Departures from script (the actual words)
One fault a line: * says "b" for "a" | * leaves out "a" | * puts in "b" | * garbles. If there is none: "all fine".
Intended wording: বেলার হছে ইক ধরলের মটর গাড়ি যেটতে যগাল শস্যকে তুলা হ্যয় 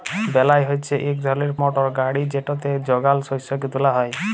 all fine